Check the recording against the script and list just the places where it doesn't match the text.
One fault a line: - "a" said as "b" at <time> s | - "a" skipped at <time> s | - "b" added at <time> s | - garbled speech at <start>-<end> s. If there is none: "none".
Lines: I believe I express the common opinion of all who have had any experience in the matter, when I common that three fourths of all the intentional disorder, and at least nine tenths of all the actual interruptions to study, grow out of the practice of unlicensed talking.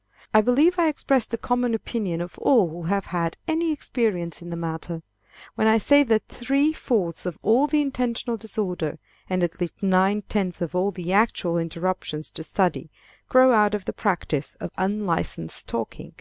- "common" said as "say" at 5.8 s